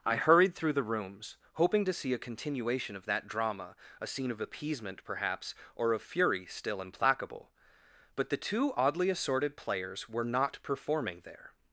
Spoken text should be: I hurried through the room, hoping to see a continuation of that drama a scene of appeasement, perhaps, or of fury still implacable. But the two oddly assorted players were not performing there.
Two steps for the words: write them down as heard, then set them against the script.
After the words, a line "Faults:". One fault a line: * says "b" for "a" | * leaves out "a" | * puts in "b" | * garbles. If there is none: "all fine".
I hurried through the rooms, hoping to see a continuation of that drama a scene of appeasement, perhaps, or of fury still implacable. But the two oddly assorted players were not performing there.
Faults:
* says "rooms" for "room"